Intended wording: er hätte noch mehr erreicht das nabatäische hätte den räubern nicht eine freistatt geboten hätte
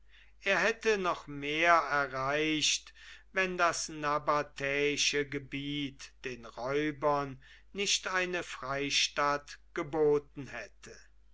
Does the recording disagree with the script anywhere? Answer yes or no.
yes